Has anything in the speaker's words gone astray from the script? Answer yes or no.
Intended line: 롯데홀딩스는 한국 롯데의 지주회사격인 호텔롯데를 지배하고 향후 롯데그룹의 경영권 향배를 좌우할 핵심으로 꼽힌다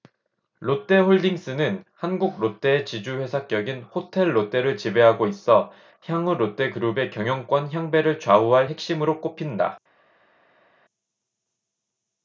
yes